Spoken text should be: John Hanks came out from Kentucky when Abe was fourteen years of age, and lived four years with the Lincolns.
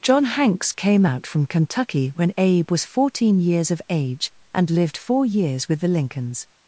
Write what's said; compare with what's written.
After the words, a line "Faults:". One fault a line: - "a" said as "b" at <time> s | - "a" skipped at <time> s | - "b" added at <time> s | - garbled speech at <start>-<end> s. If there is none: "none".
John Hanks came out from Kentucky when Abe was fourteen years of age, and lived four years with the Lincolns.
Faults:
none